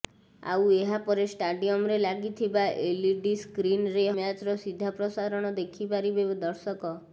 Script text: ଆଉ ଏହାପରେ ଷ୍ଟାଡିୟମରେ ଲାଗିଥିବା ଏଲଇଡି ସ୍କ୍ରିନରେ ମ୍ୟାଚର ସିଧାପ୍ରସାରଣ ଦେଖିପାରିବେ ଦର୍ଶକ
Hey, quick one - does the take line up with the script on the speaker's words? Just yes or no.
yes